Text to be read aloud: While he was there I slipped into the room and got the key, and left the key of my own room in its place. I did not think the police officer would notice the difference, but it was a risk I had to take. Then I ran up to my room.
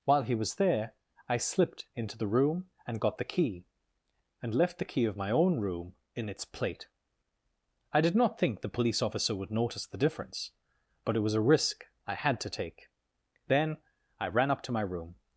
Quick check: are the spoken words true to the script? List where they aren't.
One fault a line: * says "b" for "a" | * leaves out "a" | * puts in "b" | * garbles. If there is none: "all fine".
* says "plate" for "place"